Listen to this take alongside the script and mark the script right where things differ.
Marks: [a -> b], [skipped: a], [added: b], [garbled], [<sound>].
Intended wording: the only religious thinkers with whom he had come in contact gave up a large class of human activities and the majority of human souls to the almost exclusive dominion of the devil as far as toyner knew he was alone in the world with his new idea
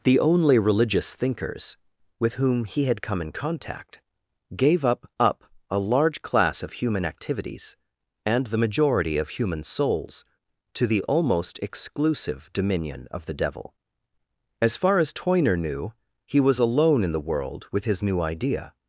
the only religious thinkers with whom he had come in contact gave up [added: up] a large class of human activities and the majority of human souls to the almost exclusive dominion of the devil as far as toyner knew he was alone in the world with his new idea